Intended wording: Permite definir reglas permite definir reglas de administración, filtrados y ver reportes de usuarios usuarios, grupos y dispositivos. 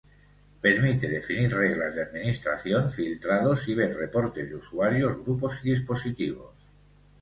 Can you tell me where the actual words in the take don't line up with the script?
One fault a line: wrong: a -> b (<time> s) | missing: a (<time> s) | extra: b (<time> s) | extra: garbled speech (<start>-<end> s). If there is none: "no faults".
missing: permite definir reglas (1.9 s)
missing: usuarios (5.2 s)